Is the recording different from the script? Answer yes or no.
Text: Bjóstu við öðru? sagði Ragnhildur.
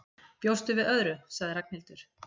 no